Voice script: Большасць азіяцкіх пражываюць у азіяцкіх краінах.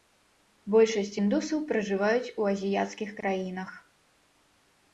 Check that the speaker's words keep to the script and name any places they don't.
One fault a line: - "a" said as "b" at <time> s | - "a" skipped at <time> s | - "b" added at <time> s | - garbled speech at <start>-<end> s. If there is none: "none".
- "азіяцкіх" said as "індусаў" at 1.2 s